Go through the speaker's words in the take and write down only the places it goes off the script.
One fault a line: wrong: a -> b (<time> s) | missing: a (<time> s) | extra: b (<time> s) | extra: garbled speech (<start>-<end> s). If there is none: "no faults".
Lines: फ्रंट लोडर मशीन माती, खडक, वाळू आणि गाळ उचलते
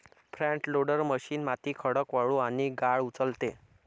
no faults